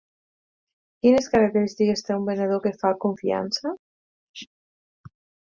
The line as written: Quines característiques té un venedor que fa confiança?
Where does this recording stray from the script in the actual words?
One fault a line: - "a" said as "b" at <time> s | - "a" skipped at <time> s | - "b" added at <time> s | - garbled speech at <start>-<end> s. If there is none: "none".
none